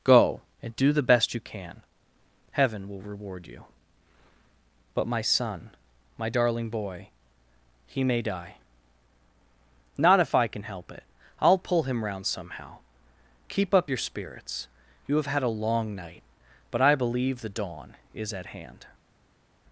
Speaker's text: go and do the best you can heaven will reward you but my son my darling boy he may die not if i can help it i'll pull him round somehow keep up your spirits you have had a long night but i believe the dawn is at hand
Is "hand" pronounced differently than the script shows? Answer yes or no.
no